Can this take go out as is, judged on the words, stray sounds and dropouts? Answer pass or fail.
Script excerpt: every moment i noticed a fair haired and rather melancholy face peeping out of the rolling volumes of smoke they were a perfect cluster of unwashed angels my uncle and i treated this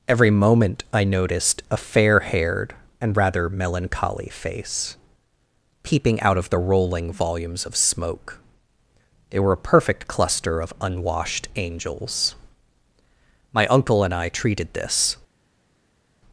pass